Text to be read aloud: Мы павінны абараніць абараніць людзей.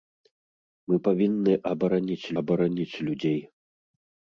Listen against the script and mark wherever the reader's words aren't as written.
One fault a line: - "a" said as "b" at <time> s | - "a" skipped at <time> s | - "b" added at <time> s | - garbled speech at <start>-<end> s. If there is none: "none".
none